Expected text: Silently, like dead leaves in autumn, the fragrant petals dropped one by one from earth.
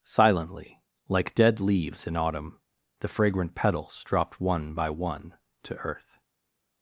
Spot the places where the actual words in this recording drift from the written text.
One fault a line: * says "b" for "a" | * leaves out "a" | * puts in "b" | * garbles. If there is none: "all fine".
* says "to" for "from"